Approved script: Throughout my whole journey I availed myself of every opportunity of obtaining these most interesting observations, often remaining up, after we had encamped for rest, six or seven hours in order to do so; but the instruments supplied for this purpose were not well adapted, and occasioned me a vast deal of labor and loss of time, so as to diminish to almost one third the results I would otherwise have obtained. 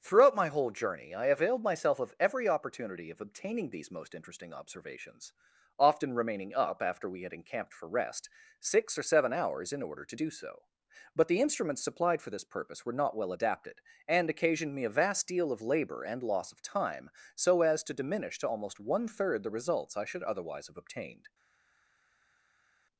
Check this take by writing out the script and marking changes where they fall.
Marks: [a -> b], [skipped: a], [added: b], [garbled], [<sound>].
Throughout my whole journey I availed myself of every opportunity of obtaining these most interesting observations, often remaining up, after we had encamped for rest, six or seven hours in order to do so; but the instruments supplied for this purpose were not well adapted, and occasioned me a vast deal of labor and loss of time, so as to diminish to almost one third the results I [would -> should] otherwise have obtained.